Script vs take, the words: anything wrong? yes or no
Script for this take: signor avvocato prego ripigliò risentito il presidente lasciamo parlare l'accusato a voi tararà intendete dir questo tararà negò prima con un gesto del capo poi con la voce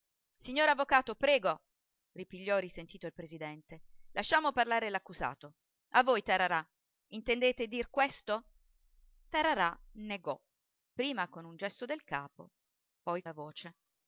yes